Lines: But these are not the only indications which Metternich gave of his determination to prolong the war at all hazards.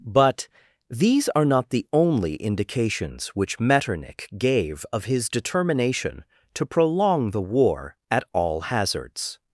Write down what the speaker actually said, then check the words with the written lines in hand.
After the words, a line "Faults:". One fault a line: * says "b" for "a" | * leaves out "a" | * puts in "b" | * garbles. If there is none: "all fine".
But these are not the only indications which Metternich gave of his determination to prolong the war at all hazards.
Faults:
all fine